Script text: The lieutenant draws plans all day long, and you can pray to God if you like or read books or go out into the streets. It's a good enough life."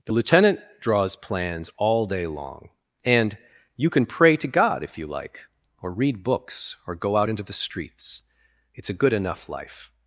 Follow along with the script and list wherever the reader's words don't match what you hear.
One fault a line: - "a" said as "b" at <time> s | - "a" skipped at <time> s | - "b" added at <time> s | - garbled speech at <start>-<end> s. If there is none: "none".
none